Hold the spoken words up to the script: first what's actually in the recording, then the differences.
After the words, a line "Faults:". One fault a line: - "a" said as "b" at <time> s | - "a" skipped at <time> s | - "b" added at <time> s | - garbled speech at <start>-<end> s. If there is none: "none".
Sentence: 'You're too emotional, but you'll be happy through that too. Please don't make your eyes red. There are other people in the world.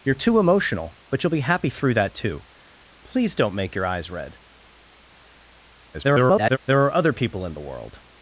'You're too emotional, but you'll be happy through that too. Please don't make your eyes red. [garbled] There are other people in the world.
Faults:
- garbled speech at 5.9-6.6 s